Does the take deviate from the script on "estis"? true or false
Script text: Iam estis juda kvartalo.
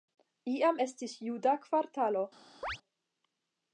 false